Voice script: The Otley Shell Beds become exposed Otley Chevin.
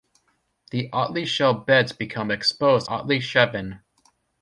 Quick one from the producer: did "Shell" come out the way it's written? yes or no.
yes